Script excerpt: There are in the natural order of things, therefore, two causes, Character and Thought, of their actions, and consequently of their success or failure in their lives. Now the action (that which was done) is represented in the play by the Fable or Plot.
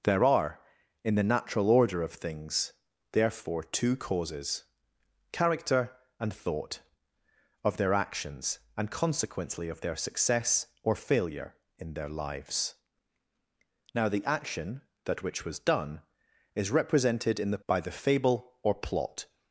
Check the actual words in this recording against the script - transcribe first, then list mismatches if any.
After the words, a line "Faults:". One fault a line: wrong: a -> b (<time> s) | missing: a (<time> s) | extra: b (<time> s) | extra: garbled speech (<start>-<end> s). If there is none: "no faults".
There are in the natural order of things, therefore, two causes, Character and Thought, of their actions, and consequently of their success or failure in their lives. Now the action (that which was done) is represented in the by the Fable or Plot.
Faults:
missing: play (17.6 s)